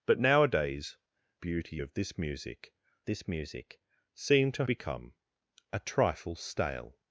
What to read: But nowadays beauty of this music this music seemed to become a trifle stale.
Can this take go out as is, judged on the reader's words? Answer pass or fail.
pass